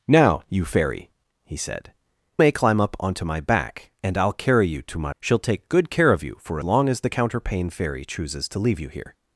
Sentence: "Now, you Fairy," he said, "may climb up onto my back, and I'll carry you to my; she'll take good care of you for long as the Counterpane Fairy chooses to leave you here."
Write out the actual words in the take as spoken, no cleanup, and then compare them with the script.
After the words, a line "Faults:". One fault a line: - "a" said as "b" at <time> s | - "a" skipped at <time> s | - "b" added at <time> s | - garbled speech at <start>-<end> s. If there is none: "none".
"Now, you Fairy," he said, "may climb up onto my back, and I'll carry you to my; she'll take good care of you for long as the Counterpane Fairy chooses to leave you here."
Faults:
none